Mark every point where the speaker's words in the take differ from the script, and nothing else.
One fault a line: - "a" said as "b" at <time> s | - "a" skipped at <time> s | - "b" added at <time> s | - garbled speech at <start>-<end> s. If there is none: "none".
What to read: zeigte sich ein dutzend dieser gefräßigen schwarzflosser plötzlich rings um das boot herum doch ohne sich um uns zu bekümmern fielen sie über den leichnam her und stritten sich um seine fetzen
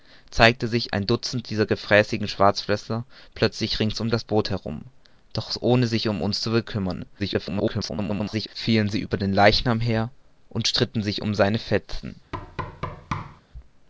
- garbled speech at 7.2-8.5 s